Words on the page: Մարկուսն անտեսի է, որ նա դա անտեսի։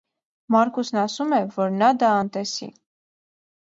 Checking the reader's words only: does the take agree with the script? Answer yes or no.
no